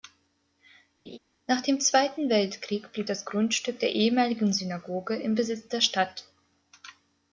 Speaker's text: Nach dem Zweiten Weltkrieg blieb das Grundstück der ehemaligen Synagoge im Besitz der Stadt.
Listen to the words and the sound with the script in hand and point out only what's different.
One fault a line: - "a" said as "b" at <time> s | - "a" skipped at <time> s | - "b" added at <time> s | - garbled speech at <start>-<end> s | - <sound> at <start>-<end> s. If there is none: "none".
- laugh at 1.1-1.2 s